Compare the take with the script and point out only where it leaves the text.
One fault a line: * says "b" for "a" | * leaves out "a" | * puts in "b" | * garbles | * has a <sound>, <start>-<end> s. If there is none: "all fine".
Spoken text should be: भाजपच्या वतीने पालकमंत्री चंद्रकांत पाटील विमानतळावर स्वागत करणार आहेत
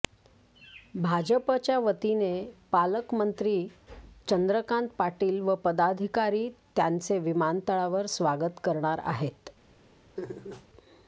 * puts in "व पदाधिकारी त्यांचे"
* has a laugh, 10.2-10.7 s